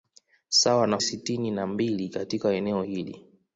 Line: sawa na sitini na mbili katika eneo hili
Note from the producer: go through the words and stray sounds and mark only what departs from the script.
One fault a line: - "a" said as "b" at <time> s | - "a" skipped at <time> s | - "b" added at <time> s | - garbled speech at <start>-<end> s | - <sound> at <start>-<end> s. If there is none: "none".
none